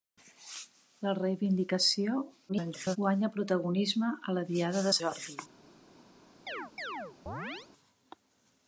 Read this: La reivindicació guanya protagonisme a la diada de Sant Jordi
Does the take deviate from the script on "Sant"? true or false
true